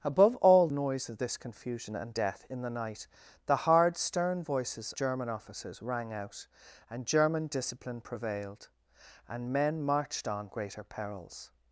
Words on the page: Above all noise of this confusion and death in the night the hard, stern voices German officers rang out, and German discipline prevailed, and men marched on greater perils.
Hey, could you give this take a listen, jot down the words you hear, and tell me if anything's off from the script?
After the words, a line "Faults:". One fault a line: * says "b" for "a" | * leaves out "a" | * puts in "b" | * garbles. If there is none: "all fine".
Above all noise of this confusion and death in the night the hard, stern voices German officers rang out, and German discipline prevailed, and men marched on greater perils.
Faults:
all fine